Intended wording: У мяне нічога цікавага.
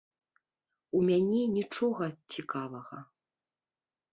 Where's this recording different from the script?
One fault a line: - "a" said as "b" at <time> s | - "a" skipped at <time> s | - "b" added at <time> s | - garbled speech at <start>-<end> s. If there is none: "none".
none